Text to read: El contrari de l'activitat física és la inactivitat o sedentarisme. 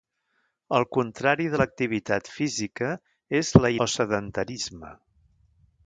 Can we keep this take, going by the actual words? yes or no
no